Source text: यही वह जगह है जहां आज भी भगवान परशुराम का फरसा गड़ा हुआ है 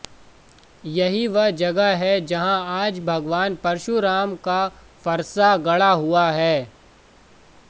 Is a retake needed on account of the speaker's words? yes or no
yes